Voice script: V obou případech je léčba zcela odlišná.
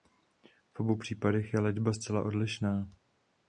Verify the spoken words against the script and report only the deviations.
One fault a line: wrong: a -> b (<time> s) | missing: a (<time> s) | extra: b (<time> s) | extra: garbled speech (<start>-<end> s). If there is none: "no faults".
no faults